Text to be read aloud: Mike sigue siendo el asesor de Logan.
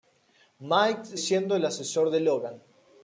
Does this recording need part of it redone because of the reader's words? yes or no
yes